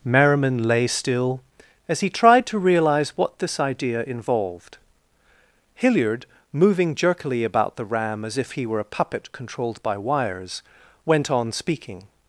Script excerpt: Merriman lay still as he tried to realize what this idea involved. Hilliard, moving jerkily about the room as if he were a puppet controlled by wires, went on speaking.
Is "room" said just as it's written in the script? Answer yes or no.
no